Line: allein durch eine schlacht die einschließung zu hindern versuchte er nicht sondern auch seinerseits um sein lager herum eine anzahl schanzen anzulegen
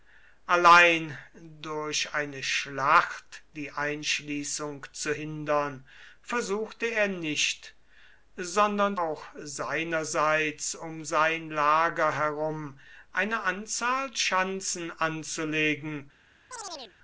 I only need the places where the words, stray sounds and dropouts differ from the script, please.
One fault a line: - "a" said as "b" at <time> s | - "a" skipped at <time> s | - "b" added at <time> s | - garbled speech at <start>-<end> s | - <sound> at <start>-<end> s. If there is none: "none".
- chirp at 16.5-17.0 s